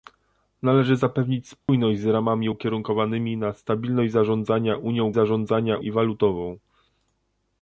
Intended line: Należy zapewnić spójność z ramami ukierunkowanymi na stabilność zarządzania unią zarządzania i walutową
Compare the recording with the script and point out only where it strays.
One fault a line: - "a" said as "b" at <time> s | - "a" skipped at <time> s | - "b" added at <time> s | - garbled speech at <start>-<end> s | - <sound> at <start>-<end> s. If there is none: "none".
- dropout at 1.6-1.7 s